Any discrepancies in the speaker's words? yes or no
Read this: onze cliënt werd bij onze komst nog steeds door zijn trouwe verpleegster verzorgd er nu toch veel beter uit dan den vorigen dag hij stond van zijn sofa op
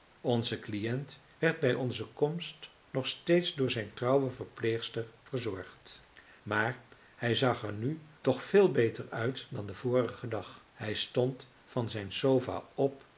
yes